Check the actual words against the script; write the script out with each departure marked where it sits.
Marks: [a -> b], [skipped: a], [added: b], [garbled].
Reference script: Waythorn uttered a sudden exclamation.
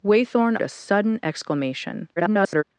Waythorn [skipped: uttered] a sudden exclamation. [garbled]